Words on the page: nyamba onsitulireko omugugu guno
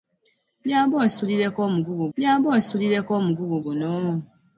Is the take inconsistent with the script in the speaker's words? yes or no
yes